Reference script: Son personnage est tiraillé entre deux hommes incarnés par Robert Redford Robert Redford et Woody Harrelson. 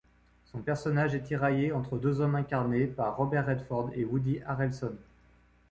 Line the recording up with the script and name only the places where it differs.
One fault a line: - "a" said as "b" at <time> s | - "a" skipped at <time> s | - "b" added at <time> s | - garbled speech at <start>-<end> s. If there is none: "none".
- "Robert Redford" skipped at 3.9 s